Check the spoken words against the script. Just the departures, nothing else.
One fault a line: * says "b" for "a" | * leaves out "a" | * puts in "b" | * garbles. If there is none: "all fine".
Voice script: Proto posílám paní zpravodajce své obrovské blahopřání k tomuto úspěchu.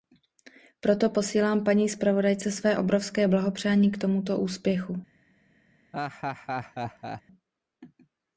all fine